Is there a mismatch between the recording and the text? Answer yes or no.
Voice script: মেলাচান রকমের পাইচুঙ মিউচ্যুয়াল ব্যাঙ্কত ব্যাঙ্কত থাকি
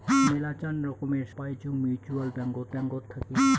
no